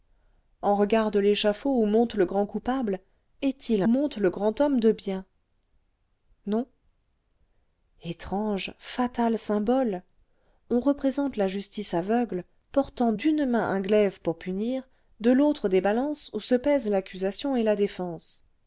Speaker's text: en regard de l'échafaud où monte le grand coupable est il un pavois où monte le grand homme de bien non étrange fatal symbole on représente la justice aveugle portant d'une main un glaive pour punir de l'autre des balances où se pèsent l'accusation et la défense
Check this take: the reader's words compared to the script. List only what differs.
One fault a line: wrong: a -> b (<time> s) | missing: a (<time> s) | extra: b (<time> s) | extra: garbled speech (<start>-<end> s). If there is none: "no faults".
missing: un pavois où (3.8 s)